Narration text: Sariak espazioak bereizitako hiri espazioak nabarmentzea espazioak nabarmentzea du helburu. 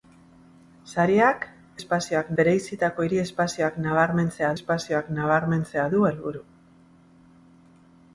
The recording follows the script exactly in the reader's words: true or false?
true